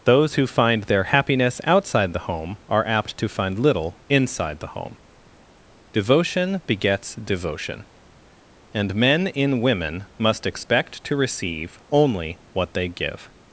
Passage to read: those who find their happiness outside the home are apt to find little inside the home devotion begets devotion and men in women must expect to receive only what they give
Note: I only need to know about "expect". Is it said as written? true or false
true